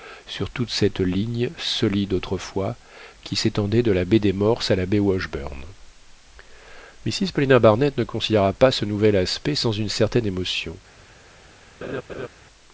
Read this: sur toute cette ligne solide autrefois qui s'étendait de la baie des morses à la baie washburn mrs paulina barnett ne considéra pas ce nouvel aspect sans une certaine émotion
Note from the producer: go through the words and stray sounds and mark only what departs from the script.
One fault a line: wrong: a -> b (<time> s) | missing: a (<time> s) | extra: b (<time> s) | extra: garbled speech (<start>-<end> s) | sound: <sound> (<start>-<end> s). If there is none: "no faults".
sound: laugh (11.8-12.3 s)